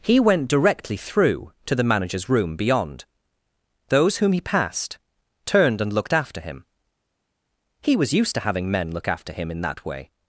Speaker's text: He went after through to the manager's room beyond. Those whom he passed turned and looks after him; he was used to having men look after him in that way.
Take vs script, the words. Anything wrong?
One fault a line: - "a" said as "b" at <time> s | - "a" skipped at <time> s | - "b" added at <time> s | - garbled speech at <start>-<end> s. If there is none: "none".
- "after" said as "directly" at 0.5 s
- "looks" said as "looked" at 5.9 s